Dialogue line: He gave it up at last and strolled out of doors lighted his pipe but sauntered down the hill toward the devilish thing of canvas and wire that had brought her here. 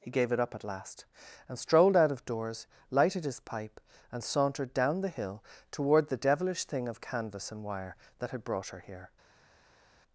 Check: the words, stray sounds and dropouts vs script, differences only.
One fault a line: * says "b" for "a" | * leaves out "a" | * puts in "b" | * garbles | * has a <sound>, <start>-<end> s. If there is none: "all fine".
* says "and" for "but"